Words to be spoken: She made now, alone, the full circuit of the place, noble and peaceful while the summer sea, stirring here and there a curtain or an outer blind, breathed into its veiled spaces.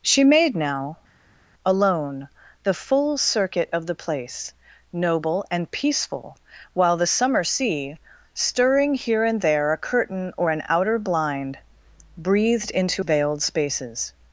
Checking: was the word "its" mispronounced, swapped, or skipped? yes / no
yes